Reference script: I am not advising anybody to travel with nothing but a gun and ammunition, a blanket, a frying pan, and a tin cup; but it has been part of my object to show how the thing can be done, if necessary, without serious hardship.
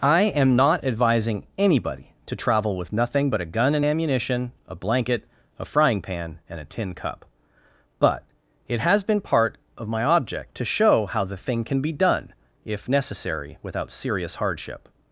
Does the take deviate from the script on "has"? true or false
false